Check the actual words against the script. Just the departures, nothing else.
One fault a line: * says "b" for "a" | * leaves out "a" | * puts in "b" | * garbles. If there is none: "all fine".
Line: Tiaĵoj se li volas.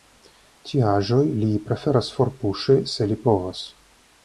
* puts in "li preferas forpuŝi"
* says "povas" for "volas"